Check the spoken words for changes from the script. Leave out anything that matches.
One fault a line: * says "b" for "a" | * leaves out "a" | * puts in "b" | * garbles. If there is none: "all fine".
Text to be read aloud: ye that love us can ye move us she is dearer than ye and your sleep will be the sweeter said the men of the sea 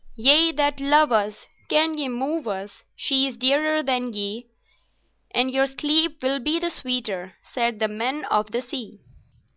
all fine